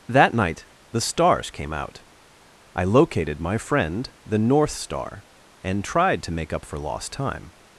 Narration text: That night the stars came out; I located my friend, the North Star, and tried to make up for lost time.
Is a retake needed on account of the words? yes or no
no